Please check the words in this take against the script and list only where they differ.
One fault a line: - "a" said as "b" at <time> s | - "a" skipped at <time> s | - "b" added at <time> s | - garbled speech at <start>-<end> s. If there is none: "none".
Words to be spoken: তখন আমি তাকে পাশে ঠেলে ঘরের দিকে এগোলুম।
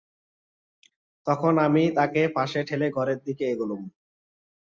none